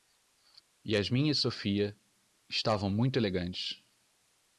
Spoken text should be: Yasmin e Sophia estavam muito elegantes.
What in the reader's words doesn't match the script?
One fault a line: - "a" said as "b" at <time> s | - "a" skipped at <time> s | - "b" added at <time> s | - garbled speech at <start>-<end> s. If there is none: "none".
none